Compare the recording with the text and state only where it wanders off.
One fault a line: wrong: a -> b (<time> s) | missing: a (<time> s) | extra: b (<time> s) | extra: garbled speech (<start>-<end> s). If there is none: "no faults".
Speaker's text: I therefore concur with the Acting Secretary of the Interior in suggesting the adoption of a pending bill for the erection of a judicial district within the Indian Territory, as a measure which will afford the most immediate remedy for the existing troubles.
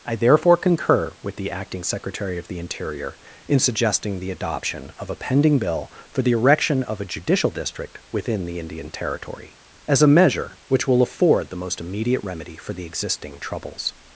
no faults